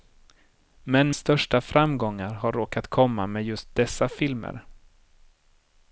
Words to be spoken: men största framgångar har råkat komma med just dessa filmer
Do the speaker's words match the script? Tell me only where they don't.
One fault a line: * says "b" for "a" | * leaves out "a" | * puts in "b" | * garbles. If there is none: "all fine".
all fine